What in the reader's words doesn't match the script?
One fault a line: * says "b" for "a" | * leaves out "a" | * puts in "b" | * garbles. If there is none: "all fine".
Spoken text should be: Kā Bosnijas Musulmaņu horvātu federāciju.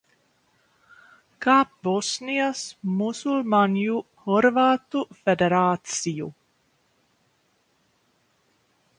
all fine